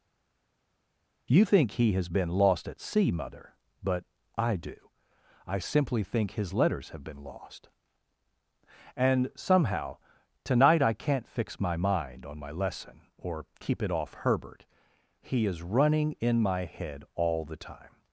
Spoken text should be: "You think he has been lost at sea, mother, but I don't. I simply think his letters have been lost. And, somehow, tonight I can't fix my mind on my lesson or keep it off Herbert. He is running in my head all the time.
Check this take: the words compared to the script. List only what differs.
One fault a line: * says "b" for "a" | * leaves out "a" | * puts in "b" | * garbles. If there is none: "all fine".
* says "do" for "don't"